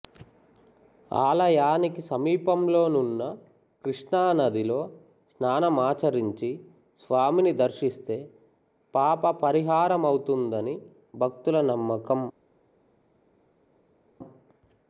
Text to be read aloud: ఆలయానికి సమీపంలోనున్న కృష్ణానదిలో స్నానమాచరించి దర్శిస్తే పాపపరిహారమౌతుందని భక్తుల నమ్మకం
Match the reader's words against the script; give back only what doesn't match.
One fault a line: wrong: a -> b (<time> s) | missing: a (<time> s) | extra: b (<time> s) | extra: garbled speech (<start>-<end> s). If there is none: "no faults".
extra: స్వామిని (7.0 s)